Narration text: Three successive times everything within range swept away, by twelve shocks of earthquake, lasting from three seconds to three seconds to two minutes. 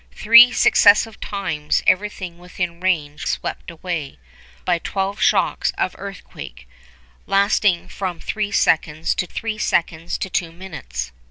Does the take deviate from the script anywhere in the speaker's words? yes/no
no